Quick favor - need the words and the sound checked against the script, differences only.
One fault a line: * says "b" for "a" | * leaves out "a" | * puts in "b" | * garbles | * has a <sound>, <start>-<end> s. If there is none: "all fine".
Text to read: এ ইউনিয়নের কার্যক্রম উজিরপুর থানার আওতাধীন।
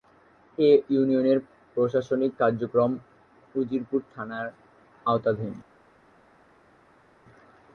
* puts in "প্রশাসনিক"